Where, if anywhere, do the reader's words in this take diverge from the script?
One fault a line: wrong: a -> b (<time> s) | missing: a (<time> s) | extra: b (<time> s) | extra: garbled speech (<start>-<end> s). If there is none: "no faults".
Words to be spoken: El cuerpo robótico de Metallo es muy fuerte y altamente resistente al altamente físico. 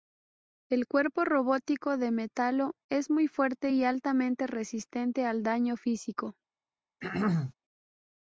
wrong: altamente -> daño (5.4 s)